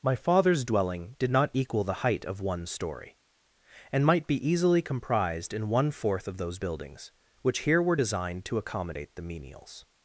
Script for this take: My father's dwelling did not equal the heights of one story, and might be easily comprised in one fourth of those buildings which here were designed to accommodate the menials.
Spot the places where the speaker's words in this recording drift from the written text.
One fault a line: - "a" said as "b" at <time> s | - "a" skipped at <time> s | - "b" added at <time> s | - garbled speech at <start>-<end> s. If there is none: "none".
- "heights" said as "height" at 2.0 s